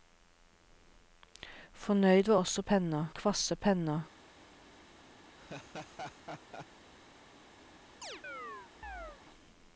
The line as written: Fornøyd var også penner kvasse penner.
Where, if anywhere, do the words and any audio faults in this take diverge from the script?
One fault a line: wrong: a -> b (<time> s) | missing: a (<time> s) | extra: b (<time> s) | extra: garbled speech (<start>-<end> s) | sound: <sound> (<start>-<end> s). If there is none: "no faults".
sound: laugh (5.4-6.7 s)
sound: chirp (8.0-9.2 s)